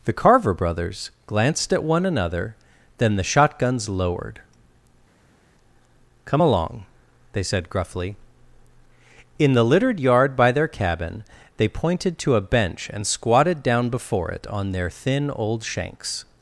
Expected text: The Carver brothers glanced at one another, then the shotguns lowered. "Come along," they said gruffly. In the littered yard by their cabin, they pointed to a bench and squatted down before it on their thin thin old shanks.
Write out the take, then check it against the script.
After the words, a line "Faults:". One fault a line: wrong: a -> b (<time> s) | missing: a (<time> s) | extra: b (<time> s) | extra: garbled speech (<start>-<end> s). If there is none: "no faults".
The Carver brothers glanced at one another, then the shotguns lowered. "Come along," they said gruffly. In the littered yard by their cabin, they pointed to a bench and squatted down before it on their thin old shanks.
Faults:
missing: thin (15.3 s)